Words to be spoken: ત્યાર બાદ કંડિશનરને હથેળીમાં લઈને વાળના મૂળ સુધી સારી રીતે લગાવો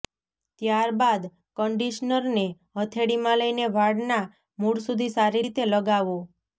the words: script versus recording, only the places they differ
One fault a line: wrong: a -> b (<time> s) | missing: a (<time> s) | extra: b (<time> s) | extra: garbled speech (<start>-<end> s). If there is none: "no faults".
no faults